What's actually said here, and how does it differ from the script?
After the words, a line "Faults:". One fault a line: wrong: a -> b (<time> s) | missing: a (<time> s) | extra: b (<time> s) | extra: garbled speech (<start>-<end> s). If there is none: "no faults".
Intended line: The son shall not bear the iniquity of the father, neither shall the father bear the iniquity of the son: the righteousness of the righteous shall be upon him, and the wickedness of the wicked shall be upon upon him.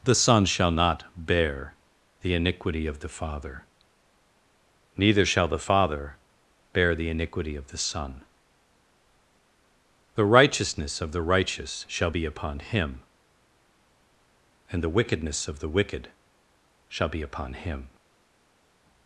The son shall not bear the iniquity of the father, neither shall the father bear the iniquity of the son: the righteousness of the righteous shall be upon him, and the wickedness of the wicked shall be upon him.
Faults:
missing: upon (17.5 s)